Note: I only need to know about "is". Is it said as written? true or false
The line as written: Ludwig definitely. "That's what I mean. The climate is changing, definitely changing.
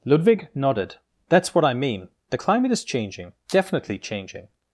true